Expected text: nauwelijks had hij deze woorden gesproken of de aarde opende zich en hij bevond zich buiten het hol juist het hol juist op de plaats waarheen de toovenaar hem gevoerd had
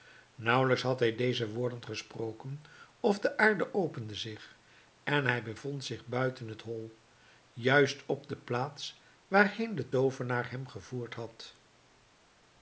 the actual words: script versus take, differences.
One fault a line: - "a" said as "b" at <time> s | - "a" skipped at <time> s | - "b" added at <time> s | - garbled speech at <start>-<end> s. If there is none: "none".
- "het hol juist" skipped at 8.1 s